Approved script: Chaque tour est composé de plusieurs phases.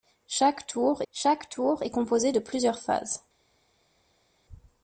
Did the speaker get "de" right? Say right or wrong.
right